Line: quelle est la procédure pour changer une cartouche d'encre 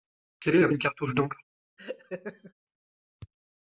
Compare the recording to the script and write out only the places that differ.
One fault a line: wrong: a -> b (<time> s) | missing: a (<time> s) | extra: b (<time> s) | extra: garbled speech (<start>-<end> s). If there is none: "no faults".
missing: procédure pour changer (0.7 s)